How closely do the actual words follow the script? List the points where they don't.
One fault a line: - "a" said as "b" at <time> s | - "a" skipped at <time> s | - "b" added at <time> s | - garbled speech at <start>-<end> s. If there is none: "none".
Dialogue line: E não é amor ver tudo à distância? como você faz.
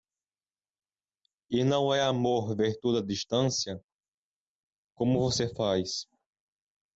none